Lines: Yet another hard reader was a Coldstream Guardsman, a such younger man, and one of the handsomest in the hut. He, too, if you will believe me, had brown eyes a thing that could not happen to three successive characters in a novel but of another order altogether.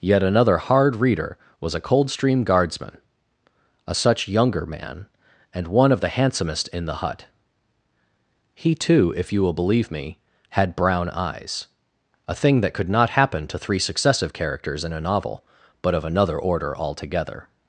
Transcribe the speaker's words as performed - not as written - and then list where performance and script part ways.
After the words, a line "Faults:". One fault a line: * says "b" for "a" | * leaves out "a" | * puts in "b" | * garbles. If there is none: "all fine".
Yet another hard reader was a Coldstream Guardsman, a such younger man, and one of the handsomest in the hut. He, too, if you will believe me, had brown eyes a thing that could not happen to three successive characters in a novel but of another order altogether.
Faults:
all fine